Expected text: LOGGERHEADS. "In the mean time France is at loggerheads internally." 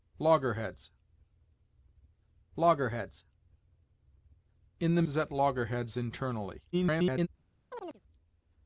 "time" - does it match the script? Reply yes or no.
no